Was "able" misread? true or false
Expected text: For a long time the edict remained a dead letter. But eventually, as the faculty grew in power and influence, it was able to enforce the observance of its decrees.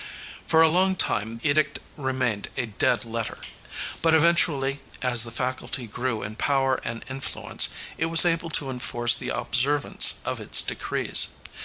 false